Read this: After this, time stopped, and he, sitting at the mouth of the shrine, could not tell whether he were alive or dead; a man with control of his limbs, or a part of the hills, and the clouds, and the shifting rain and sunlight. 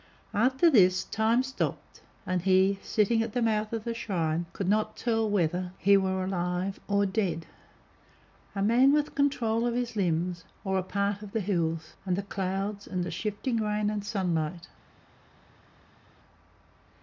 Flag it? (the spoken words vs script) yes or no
no